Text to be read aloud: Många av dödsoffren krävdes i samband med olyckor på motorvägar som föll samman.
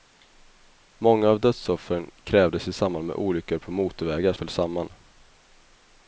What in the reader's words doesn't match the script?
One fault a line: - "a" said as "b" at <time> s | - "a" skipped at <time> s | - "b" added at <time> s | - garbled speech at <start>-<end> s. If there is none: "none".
- "som" skipped at 4.3 s